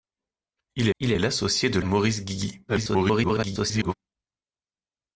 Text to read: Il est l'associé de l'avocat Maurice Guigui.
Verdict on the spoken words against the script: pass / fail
fail